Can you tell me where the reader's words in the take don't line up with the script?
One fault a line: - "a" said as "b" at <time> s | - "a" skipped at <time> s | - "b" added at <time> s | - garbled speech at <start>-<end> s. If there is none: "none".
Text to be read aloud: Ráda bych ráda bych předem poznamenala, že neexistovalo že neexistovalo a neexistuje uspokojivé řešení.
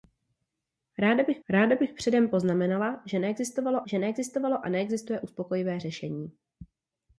none